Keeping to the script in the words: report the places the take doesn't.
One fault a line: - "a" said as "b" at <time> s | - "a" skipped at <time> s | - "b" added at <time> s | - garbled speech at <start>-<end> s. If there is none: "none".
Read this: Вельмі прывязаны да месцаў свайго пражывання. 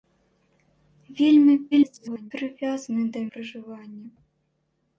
- garbled speech at 1.7-2.3 s
- "месцаў свайго" skipped at 3.2 s